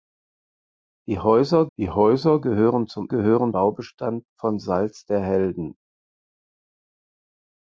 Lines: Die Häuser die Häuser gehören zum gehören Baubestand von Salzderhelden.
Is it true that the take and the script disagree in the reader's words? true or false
false